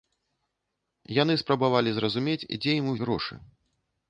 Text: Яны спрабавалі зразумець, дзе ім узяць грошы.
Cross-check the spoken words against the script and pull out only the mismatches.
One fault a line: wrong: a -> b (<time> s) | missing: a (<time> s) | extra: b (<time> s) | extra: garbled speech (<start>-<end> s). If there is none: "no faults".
missing: узяць (2.9 s)